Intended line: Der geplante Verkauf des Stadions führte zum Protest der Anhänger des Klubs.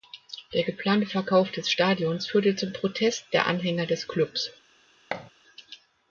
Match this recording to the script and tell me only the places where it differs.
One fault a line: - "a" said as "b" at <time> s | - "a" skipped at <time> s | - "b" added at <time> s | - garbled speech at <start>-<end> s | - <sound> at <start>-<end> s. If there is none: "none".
- thud at 5.1-5.3 s